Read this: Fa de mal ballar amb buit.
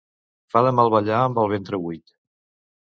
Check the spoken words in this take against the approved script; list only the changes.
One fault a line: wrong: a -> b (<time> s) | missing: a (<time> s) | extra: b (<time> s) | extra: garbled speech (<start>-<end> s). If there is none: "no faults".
extra: el ventre (1.4 s)